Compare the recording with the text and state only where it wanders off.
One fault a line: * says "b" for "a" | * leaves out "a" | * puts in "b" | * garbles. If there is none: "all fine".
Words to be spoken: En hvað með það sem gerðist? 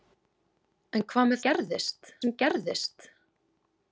* says "gerðist" for "það"